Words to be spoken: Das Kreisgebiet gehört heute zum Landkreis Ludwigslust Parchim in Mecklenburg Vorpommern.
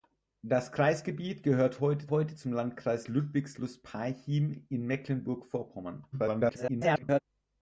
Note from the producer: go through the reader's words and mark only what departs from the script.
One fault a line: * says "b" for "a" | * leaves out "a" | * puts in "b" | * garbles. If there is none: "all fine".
* puts in "heute"
* garbles